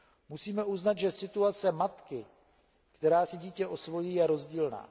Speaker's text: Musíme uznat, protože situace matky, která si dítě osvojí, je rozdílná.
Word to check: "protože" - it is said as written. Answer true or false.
false